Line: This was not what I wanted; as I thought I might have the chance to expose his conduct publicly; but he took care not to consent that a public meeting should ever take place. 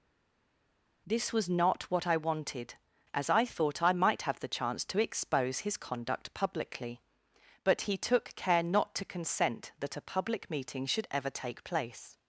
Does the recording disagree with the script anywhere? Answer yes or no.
no